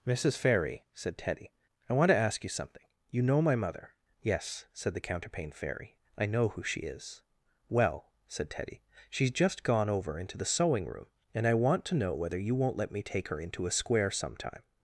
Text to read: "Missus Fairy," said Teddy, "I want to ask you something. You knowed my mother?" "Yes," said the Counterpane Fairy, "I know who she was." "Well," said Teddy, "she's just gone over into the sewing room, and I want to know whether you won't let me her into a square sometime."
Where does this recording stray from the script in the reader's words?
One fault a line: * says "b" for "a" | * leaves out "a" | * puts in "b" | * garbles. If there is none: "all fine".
* says "know" for "knowed"
* says "is" for "was"
* puts in "take"